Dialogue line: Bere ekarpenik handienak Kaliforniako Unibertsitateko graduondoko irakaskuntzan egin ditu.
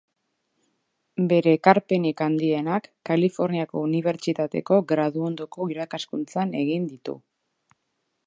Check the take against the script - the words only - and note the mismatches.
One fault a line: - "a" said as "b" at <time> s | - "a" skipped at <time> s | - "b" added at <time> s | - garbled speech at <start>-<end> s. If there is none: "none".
none